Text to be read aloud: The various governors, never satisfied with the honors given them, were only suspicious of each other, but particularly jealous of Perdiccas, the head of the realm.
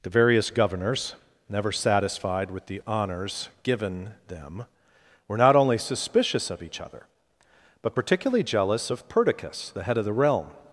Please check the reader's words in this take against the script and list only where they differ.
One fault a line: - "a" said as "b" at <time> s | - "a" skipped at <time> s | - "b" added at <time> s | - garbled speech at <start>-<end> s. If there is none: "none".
- "not" added at 5.4 s